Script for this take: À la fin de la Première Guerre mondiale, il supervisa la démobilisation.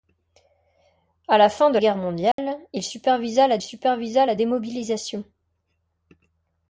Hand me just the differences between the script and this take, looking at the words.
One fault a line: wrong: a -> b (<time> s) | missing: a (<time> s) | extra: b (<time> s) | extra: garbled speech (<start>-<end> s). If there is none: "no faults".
missing: la Première (1.8 s)
extra: supervisa la (3.6 s)